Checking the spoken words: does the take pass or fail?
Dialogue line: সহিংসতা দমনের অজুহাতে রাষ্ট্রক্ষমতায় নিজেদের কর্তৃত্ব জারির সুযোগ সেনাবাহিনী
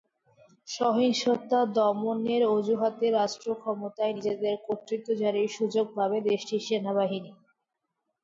fail